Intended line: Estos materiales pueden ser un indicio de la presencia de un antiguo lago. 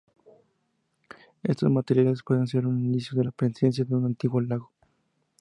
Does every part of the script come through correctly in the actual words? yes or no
yes